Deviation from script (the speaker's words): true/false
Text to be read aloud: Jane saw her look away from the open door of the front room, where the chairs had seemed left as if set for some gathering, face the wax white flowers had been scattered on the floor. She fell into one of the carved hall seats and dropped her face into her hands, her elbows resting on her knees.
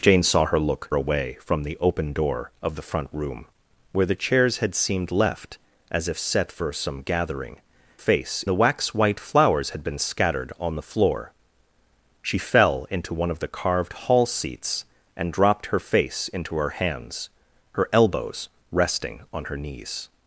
false